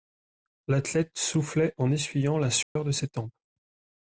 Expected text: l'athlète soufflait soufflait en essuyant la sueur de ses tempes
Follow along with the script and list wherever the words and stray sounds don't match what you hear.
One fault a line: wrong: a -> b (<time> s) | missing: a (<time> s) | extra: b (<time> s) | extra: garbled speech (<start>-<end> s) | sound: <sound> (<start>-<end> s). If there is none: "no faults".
missing: soufflait (1.8 s)
sound: dropout (2.6-2.8 s)